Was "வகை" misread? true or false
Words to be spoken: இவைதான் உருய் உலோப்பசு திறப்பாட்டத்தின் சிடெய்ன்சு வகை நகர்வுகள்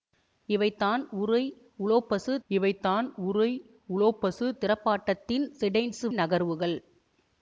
true